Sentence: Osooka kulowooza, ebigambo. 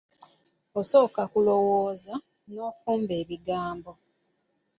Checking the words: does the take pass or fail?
fail